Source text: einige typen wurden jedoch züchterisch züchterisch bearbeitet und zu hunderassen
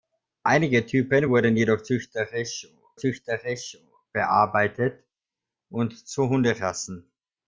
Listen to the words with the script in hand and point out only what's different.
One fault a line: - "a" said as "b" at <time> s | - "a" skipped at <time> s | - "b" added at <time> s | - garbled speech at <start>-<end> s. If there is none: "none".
none